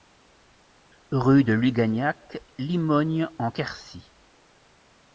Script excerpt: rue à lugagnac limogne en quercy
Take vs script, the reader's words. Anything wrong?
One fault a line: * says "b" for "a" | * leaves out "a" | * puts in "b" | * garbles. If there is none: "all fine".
* says "de" for "à"